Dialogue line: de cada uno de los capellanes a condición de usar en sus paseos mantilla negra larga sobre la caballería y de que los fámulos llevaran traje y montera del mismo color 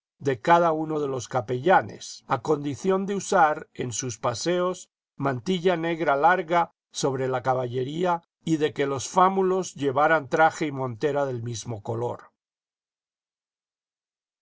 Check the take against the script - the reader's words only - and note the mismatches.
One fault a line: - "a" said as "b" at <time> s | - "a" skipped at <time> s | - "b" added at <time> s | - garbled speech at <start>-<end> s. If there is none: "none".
none